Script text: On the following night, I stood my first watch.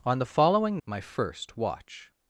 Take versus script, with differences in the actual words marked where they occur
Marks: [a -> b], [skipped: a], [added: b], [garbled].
On the following [skipped: night, I stood] my first watch.